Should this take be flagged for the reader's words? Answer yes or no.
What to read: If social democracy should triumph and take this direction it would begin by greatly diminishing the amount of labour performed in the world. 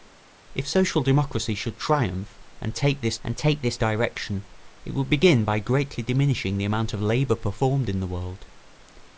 yes